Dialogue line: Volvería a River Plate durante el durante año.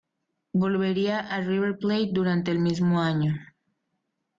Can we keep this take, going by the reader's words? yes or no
no